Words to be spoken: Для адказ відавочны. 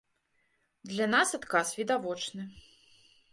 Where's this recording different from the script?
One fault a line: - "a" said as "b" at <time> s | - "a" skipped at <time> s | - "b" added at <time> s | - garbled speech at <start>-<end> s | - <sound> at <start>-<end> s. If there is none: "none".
- "нас" added at 1.1 s